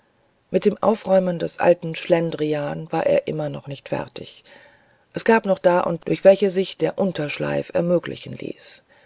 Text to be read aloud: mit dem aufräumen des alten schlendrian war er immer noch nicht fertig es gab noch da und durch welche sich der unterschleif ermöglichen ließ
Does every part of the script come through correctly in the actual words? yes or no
yes